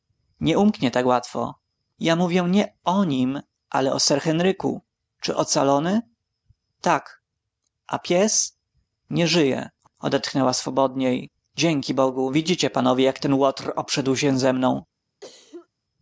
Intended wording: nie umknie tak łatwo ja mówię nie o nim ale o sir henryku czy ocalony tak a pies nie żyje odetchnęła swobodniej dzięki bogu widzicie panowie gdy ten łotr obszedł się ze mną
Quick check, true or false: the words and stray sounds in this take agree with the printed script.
false